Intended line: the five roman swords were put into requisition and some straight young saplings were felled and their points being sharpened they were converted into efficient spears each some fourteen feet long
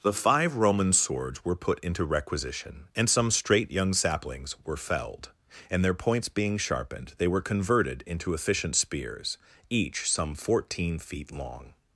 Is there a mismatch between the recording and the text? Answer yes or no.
no